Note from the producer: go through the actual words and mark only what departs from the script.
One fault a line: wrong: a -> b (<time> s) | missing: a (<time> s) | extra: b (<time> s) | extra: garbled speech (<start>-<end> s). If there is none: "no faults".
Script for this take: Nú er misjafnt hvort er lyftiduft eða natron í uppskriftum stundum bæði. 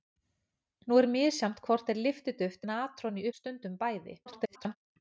missing: eða (2.6 s)
missing: uppskriftum (3.3 s)
extra: garbled speech (4.3-4.8 s)